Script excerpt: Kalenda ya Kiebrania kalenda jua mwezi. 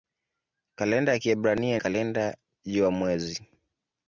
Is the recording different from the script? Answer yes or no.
no